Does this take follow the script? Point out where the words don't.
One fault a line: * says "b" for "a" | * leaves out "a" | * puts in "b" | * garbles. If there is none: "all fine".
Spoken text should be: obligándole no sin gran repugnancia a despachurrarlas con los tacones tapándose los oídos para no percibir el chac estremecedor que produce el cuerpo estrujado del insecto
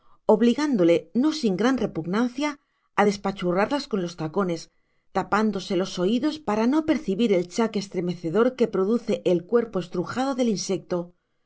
all fine